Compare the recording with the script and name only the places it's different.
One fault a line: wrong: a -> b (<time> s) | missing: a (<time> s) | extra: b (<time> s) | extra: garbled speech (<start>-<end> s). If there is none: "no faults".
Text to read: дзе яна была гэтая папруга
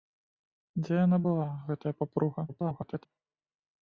extra: garbled speech (2.5-3.1 s)